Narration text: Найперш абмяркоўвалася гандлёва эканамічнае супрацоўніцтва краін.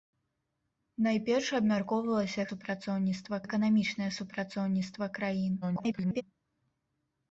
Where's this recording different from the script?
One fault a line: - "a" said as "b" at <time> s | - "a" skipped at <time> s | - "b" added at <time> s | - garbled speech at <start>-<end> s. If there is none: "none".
- "гандлёва" said as "супрацоўніцтва" at 2.5 s
- garbled speech at 5.6-6.2 s